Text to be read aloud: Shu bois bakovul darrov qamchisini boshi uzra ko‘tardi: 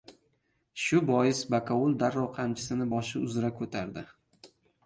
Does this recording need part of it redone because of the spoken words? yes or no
no